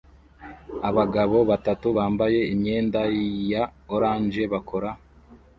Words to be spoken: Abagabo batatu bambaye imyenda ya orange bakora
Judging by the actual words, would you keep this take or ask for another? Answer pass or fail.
pass